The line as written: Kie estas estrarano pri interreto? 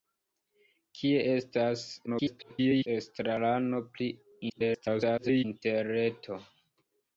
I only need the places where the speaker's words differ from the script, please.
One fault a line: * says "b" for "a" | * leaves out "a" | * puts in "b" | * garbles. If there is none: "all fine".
* garbles
* garbles